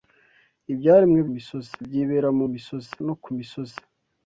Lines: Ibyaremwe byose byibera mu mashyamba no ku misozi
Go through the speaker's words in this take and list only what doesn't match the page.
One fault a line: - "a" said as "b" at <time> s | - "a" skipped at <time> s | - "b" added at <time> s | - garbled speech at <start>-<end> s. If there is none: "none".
- "byose" said as "misozi" at 1.3 s
- "mashyamba" said as "misozi" at 2.5 s